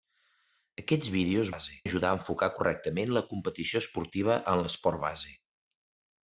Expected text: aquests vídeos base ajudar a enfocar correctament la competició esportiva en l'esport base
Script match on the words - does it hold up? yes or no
yes